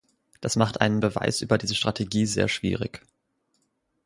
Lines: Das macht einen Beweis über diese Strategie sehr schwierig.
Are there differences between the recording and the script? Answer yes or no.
no